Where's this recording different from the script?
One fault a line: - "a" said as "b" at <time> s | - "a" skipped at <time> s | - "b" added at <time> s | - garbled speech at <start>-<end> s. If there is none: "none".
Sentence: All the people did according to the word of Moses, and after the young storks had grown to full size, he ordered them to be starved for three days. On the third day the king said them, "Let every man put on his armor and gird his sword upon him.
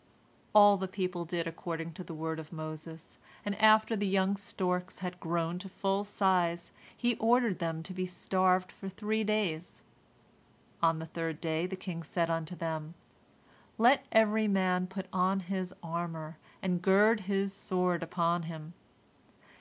- "unto" added at 12.3 s